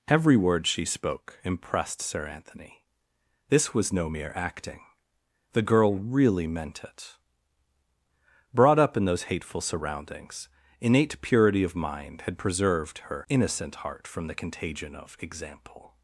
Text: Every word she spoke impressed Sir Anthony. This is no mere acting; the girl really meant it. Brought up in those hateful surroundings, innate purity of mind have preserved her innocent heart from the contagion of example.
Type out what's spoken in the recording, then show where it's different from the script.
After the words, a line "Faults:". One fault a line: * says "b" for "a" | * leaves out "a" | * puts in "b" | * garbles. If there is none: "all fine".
Every word she spoke impressed Sir Anthony. This was no mere acting; the girl really meant it. Brought up in those hateful surroundings, innate purity of mind had preserved her innocent heart from the contagion of example.
Faults:
* says "was" for "is"
* says "had" for "have"